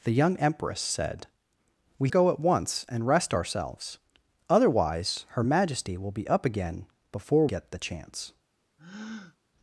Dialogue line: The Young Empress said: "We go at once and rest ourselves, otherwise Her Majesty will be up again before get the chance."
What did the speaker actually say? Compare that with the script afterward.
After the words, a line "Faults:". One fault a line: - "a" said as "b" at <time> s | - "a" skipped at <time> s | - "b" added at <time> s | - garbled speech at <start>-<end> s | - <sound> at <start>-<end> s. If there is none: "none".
The Young Empress said: "We go at once and rest ourselves, otherwise Her Majesty will be up again before get the chance."
Faults:
- breath at 8.8-9.4 s